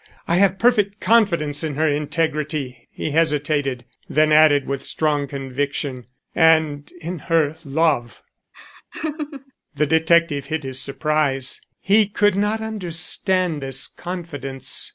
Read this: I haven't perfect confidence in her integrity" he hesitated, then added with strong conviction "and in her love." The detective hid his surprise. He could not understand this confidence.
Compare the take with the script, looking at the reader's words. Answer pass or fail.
fail